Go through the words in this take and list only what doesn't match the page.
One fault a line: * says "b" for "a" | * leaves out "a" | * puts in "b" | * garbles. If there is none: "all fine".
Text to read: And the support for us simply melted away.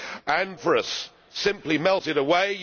* leaves out "the support"